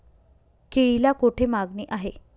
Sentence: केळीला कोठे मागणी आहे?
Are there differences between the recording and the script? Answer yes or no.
no